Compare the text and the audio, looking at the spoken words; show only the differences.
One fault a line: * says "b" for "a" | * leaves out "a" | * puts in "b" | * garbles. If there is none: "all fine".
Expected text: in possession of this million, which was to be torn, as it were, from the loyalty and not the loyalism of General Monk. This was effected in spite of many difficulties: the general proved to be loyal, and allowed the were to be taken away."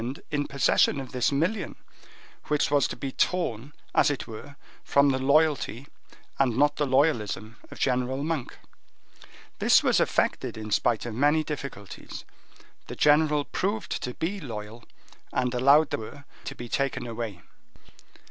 all fine